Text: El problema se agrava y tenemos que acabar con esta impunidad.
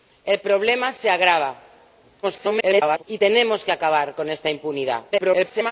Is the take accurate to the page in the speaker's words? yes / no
no